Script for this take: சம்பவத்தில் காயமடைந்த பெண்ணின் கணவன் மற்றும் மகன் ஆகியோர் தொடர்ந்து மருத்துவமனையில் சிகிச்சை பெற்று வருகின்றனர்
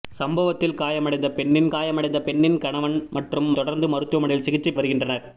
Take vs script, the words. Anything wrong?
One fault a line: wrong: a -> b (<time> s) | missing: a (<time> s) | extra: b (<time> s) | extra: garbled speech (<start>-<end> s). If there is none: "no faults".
extra: காயமடைந்த பெண்ணின் (1.7 s)
missing: மகன் ஆகியோர் (3.5 s)
missing: பெற்று (4.7 s)